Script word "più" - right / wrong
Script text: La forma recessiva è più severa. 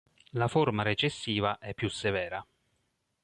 right